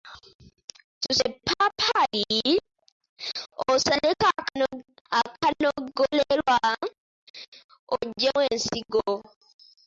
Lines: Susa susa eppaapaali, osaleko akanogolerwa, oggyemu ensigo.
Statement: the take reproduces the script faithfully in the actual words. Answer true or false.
false